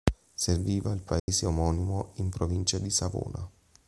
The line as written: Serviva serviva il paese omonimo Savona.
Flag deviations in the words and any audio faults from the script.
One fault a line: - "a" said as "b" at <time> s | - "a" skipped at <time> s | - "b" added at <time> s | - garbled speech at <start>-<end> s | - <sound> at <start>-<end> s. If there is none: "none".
- "serviva" skipped at 0.9 s
- dropout at 1.2-1.3 s
- "in provincia di" added at 2.1 s